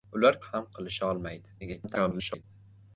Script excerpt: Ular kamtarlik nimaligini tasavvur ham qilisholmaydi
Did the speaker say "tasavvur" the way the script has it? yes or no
no